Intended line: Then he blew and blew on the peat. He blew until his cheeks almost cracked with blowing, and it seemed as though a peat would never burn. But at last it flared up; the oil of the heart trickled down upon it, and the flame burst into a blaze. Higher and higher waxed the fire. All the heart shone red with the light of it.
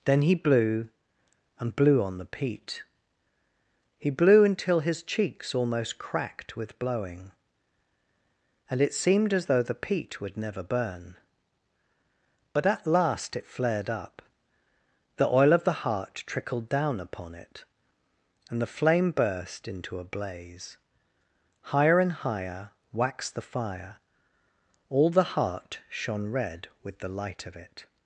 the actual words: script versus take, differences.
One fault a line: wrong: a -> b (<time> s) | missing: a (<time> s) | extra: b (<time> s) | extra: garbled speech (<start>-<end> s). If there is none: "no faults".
wrong: a -> the (9.6 s)